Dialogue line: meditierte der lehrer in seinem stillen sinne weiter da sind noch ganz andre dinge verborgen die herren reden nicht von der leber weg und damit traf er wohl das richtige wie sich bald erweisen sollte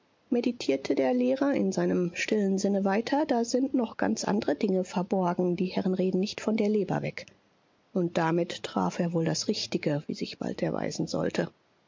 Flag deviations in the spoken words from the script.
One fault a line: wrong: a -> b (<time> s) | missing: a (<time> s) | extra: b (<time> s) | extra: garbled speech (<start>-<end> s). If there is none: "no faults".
no faults